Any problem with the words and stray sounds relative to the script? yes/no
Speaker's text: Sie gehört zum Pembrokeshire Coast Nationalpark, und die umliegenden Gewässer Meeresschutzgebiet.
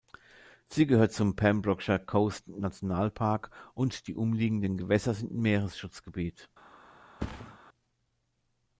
yes